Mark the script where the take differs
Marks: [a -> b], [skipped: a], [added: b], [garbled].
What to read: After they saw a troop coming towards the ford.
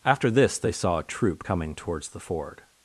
After [added: this] they saw a troop coming towards the ford.